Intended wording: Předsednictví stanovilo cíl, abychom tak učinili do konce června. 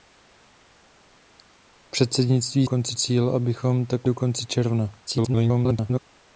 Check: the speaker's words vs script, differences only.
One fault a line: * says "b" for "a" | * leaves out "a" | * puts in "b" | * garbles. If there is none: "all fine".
* says "konce" for "stanovilo"
* leaves out "učinili"
* garbles